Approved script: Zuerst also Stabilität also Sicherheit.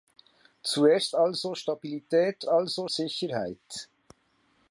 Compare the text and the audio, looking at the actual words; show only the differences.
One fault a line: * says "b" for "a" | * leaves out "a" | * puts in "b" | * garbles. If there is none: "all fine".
all fine